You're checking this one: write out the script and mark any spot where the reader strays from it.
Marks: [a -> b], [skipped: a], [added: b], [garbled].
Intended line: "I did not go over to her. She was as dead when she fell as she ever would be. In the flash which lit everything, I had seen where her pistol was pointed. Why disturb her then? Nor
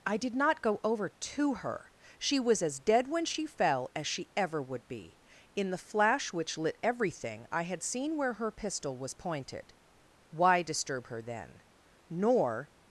"I did not go over to her. She was as dead when she fell as she ever would be. In the flash which lit everything, I had seen where her pistol was pointed. Why disturb her then? Nor